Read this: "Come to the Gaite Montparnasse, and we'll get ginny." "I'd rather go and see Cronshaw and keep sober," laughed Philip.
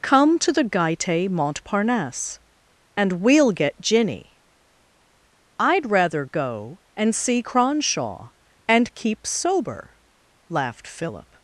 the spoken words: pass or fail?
pass